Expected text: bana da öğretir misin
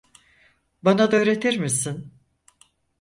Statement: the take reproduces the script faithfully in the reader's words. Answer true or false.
true